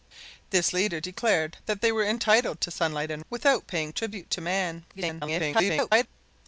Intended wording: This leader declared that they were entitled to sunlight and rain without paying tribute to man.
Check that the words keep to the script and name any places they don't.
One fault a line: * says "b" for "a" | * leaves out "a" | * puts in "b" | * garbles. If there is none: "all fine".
* leaves out "rain"
* garbles